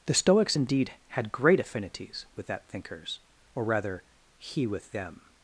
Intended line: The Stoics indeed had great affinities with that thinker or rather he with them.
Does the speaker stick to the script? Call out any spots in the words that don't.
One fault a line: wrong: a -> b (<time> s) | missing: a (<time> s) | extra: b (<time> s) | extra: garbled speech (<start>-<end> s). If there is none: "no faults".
wrong: thinker -> thinkers (2.7 s)